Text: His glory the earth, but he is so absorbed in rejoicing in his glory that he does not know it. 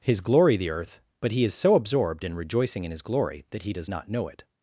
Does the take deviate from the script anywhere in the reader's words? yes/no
no